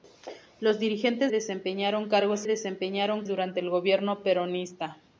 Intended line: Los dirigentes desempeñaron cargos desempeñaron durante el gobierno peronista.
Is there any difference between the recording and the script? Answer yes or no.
no